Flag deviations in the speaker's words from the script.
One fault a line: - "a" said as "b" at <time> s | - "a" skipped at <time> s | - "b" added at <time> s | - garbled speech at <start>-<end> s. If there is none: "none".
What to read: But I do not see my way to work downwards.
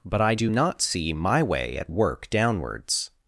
- "to" said as "at" at 1.8 s